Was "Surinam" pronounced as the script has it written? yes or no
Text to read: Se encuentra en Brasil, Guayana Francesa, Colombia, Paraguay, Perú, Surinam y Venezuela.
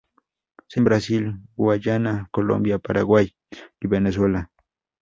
no